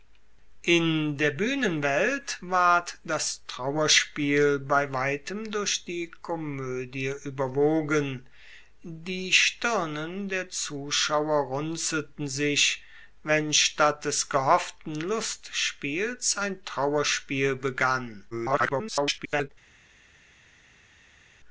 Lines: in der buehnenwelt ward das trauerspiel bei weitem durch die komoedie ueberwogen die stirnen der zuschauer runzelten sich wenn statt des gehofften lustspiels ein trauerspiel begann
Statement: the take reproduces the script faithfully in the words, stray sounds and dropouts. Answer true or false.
false